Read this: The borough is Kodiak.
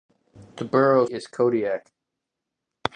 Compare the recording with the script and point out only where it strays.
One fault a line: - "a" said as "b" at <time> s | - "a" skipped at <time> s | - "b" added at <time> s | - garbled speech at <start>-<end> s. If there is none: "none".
none